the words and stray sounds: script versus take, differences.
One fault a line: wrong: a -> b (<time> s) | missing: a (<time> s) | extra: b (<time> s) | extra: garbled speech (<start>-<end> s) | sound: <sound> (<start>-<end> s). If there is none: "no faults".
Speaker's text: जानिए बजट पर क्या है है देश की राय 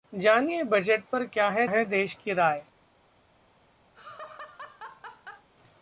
sound: laugh (3.9-5.5 s)